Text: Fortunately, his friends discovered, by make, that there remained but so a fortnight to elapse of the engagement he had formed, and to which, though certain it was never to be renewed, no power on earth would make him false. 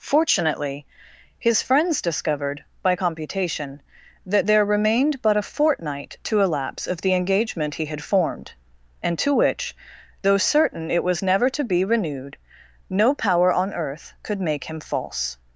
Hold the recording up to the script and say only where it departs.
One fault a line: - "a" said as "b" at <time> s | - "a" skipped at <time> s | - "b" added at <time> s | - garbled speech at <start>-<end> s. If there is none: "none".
- "make" said as "computation" at 2.9 s
- "so" skipped at 5.4 s
- "would" said as "could" at 14.2 s